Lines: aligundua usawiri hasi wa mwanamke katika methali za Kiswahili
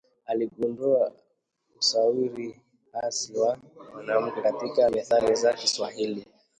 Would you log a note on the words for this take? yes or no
no